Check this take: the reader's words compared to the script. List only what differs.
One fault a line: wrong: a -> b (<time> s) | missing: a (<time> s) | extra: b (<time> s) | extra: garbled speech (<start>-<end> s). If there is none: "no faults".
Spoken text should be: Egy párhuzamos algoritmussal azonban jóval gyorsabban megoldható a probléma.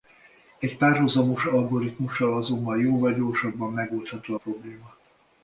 no faults